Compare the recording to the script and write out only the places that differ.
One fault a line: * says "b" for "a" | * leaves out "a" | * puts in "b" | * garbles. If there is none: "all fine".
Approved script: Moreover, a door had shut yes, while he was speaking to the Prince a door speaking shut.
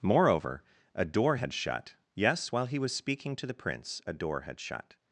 * says "had" for "speaking"